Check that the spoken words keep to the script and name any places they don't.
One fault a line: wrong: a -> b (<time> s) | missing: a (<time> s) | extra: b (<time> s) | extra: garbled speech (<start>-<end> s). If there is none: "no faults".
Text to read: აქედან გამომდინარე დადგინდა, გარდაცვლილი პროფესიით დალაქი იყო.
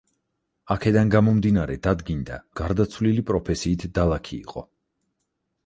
no faults